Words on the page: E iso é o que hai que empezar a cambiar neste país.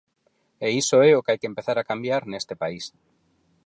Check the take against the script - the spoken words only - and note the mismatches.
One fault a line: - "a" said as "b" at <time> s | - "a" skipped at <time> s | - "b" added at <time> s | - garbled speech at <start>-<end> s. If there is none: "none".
none